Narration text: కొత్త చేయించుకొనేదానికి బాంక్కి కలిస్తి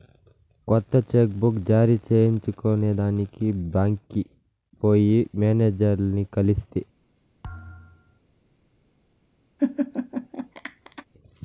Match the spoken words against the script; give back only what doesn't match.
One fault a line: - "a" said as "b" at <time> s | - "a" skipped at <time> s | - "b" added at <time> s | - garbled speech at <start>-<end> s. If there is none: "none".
- "చెక్ బుక్ జారీ" added at 1.1 s
- "పోయి మేనేజర్లని" added at 4.8 s